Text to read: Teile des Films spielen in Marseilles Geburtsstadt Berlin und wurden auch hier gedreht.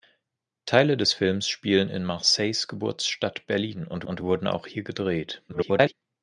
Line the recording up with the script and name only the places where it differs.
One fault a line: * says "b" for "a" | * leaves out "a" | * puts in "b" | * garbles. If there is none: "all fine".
* puts in "und"
* garbles